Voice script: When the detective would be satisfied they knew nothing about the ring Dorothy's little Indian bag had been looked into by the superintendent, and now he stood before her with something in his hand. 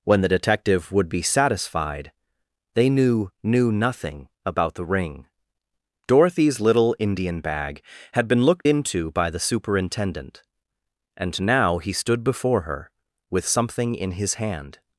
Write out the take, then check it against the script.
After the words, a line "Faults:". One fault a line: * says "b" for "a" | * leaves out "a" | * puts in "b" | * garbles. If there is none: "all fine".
When the detective would be satisfied they knew knew nothing about the ring Dorothy's little Indian bag had been looked into by the superintendent, and now he stood before her with something in his hand.
Faults:
* puts in "knew"